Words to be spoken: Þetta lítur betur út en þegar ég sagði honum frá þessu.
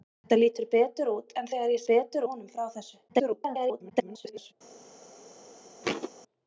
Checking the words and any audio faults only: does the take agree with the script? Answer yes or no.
no